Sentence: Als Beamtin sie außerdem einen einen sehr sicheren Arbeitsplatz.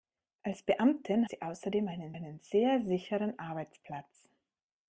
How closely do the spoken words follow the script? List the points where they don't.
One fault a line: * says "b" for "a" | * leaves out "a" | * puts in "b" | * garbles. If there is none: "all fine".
all fine